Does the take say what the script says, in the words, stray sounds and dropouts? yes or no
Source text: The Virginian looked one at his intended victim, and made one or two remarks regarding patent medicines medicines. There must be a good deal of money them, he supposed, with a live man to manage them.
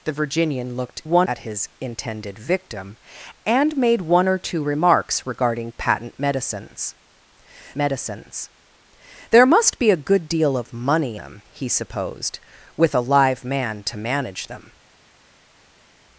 yes